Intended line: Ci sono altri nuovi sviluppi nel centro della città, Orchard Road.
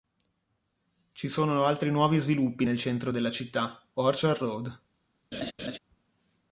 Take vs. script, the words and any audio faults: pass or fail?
fail